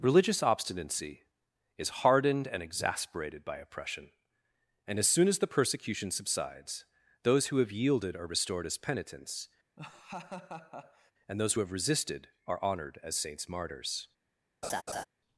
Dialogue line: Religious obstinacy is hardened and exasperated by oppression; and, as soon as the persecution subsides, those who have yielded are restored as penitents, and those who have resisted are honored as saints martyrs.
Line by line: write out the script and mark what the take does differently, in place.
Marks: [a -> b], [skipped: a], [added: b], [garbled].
Religious obstinacy is hardened and exasperated by oppression; and, as soon as the persecution subsides, those who have yielded are restored as penitents, and those who have resisted are honored as saints martyrs.